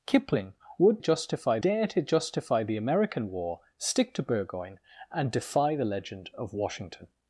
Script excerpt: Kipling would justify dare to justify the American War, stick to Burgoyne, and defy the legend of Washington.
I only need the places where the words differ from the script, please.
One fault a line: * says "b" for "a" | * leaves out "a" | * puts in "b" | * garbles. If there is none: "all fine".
all fine